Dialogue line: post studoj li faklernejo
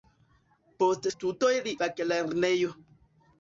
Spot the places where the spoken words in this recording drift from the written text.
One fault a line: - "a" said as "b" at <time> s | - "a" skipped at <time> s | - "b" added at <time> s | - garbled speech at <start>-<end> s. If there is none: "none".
none